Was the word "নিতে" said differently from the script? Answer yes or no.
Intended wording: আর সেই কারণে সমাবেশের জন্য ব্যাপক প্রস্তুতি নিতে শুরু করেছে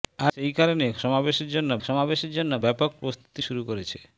yes